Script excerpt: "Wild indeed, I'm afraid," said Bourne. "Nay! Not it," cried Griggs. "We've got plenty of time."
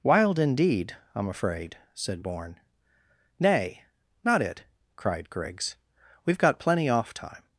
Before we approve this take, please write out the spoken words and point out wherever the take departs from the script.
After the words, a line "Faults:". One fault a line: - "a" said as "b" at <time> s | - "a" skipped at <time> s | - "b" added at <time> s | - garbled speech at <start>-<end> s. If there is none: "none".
"Wild indeed, I'm afraid," said Bourne. "Nay! Not it," cried Griggs. "We've got plenty off time."
Faults:
- "of" said as "off" at 6.9 s